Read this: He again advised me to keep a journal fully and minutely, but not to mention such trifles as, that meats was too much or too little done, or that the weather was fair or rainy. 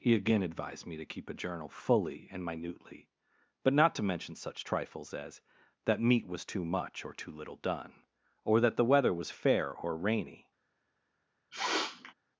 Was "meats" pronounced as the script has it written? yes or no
no